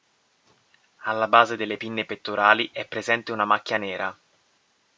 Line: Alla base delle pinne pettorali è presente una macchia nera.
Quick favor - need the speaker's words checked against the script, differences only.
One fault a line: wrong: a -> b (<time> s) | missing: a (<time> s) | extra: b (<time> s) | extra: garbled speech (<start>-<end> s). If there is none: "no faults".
no faults